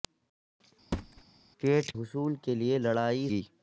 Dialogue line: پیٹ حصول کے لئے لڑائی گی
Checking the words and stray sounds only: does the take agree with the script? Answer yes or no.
no